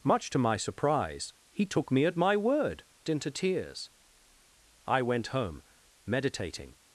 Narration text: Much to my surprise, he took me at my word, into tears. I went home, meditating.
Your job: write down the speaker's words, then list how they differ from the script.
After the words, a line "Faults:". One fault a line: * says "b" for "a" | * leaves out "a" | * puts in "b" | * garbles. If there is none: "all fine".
Much to my surprise, he took me at my word, into tears. I went home, meditating.
Faults:
all fine